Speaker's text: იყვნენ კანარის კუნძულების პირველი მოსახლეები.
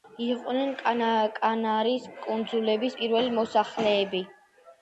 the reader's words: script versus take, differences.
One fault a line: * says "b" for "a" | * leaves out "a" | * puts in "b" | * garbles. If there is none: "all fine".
all fine